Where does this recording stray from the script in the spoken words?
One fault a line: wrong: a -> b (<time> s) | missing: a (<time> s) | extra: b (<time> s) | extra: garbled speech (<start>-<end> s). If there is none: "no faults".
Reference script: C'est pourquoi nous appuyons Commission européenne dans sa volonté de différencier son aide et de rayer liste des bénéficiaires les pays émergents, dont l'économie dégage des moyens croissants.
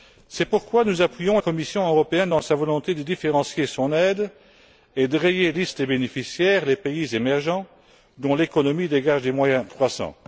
no faults